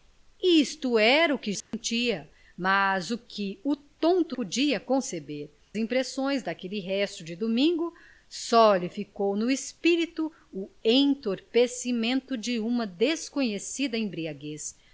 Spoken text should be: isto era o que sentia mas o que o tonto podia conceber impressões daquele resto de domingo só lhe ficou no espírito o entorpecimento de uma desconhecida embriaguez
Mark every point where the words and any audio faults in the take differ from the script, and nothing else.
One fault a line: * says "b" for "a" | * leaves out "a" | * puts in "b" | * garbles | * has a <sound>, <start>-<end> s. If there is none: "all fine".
* has a dropout, 1.6-1.7 s